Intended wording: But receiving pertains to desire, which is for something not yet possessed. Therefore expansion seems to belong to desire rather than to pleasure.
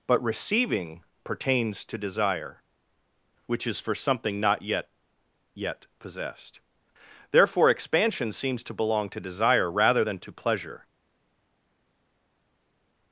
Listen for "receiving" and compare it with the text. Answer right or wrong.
right